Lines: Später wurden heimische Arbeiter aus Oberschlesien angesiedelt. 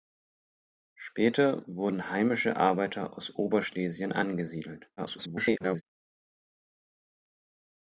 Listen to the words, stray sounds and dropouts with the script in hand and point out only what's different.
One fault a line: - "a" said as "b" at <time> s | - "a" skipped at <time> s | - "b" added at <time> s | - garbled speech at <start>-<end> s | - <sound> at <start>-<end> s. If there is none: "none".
- garbled speech at 5.0-5.8 s